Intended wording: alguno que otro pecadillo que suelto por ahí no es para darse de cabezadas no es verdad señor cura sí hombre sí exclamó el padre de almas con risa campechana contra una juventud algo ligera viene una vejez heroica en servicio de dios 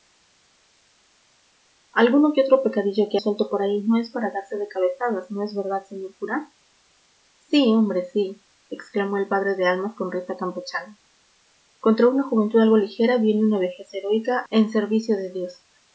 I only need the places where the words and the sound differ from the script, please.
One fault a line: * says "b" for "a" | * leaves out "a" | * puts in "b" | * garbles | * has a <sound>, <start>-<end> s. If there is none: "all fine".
all fine